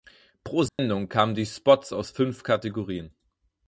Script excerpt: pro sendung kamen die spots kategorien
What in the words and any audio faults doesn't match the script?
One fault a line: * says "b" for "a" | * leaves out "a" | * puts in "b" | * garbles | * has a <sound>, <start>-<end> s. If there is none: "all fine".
* has a dropout, 0.7-0.8 s
* puts in "aus fünf"